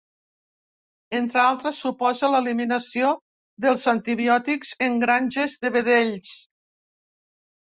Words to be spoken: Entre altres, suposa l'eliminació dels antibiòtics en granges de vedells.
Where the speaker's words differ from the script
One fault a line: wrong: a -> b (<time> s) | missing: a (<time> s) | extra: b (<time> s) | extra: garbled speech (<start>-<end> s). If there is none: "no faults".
no faults